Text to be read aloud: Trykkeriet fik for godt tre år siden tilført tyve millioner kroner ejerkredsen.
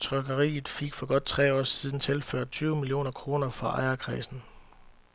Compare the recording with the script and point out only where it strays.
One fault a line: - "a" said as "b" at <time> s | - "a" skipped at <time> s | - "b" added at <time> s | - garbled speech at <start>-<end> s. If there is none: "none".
- "fra" added at 3.5 s